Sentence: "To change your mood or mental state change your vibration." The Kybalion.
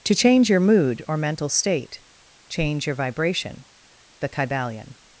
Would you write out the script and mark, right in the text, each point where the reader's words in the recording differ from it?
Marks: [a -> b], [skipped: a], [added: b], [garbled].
"To change your mood or mental state change your vibration." The Kybalion.